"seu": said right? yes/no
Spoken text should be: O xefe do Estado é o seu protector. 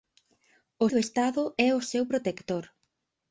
yes